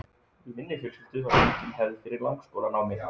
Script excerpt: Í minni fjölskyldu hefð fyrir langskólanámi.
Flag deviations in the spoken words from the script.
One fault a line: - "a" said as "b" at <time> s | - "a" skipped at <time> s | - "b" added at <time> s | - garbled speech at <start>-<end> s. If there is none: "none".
- "var engin" added at 1.3 s